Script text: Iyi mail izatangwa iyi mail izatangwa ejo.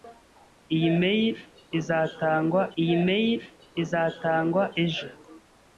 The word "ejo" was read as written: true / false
true